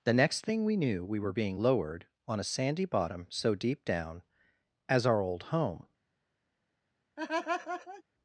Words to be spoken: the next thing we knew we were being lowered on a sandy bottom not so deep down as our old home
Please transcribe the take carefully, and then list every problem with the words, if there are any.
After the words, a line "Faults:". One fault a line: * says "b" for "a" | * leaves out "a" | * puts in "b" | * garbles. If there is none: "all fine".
the next thing we knew we were being lowered on a sandy bottom so deep down as our old home
Faults:
* leaves out "not"